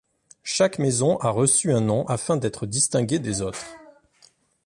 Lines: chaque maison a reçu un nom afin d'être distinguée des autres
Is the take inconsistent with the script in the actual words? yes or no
no